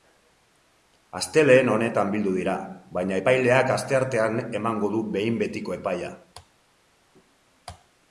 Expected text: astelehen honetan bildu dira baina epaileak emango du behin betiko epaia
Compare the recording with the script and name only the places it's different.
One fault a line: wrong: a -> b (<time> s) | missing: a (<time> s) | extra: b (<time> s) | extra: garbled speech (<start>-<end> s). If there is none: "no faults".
extra: asteartean (3.8 s)